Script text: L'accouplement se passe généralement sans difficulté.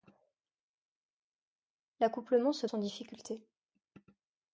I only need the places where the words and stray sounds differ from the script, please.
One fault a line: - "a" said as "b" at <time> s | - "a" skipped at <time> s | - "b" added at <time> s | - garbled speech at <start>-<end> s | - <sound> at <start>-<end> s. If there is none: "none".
- "passe généralement" skipped at 2.7 s